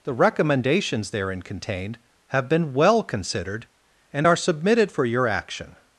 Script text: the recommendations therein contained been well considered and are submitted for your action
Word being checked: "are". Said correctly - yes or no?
yes